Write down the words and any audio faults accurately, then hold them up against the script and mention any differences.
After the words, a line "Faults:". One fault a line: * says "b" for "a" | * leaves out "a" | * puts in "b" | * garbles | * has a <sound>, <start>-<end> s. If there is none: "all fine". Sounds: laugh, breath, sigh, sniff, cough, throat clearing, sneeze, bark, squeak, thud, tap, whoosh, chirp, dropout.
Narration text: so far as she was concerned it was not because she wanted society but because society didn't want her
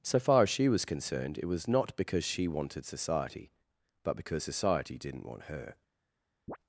so far as she was concerned it was not because she wanted society but because society didn't want her
Faults:
* has a chirp, 6.5-6.6 s